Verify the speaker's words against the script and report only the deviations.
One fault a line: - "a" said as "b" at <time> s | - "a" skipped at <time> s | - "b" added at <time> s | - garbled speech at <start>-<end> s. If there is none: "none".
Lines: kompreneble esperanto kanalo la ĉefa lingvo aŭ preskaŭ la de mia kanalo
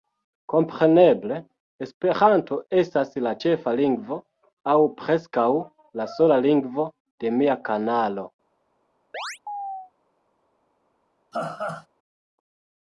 - "kanalo" said as "estas" at 2.8 s
- "sola lingvo" added at 6.2 s